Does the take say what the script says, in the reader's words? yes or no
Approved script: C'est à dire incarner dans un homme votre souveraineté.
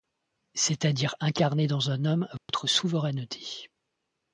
yes